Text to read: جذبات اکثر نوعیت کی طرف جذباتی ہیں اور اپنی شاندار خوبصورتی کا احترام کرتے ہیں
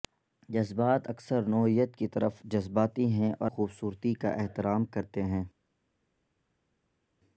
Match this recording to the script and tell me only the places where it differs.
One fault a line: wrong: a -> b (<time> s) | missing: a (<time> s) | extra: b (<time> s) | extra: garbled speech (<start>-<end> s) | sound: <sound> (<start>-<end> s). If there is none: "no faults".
missing: اپنی شاندار (3.5 s)